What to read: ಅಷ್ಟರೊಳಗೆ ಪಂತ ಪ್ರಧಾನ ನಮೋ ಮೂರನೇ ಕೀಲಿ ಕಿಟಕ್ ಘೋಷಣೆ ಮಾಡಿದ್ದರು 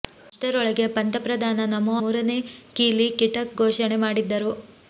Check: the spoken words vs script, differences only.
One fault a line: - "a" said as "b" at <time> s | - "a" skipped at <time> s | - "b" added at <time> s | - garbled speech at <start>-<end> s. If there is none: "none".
none